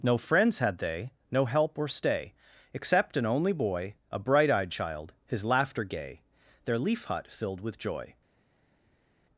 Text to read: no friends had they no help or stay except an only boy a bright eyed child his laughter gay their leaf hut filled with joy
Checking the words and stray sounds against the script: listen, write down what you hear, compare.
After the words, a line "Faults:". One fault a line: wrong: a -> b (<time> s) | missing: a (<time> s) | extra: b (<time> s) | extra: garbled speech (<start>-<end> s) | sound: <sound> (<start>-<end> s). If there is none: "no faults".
no friends had they no help or stay except an only boy a bright eyed child his laughter gay their leaf hut filled with joy
Faults:
no faults